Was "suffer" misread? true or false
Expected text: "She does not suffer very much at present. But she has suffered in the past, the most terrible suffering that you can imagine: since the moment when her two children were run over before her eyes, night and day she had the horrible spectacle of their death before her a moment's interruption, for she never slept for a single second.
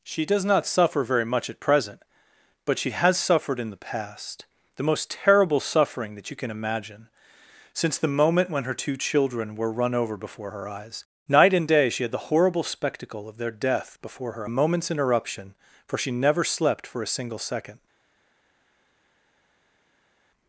false